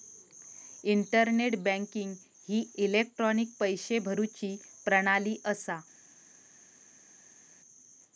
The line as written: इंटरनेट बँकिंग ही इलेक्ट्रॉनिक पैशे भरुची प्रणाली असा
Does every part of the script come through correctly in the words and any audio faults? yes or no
yes